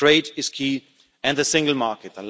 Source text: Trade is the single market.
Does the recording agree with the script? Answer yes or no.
no